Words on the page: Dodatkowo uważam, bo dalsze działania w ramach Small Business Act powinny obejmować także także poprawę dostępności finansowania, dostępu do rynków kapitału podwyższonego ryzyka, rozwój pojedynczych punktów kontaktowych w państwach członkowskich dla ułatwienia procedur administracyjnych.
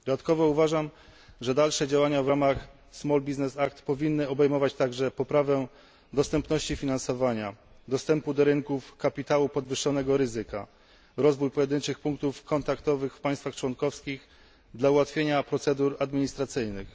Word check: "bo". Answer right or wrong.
wrong